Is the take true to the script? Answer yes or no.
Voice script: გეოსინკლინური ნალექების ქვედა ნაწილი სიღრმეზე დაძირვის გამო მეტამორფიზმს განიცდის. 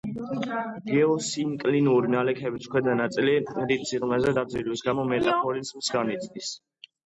no